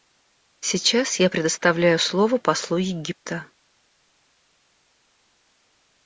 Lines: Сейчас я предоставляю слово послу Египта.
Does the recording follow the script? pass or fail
pass